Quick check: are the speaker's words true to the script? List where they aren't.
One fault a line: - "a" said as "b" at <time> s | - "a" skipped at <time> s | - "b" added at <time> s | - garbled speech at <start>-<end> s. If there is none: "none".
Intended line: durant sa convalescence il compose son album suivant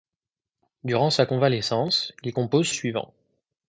- "son album" skipped at 2.7 s